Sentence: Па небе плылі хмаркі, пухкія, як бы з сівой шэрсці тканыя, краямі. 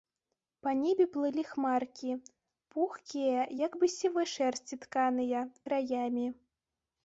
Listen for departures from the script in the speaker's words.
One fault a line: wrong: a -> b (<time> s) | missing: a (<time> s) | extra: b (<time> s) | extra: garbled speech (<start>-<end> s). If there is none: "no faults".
no faults